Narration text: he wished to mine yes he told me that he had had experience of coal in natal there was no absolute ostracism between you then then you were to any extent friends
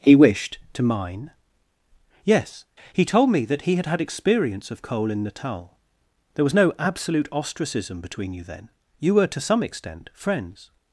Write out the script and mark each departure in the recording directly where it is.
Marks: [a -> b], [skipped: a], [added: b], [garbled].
he wished to mine yes he told me that he had had experience of coal in natal there was no absolute ostracism between you then [skipped: then] you were to [any -> some] extent friends